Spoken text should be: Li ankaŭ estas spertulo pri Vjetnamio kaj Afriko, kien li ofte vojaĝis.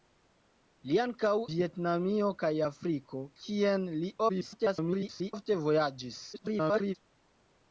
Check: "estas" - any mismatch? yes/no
yes